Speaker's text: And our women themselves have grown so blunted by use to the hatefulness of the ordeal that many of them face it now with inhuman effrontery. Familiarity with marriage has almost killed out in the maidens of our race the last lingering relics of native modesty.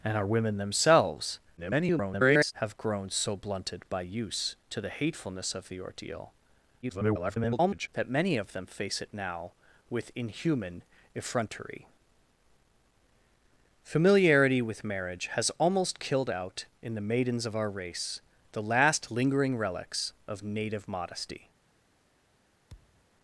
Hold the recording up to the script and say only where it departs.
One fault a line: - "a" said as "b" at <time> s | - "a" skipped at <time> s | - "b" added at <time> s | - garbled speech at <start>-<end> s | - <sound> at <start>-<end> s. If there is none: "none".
- garbled speech at 1.6-2.5 s
- garbled speech at 6.8-7.9 s
- thud at 22.7-23.1 s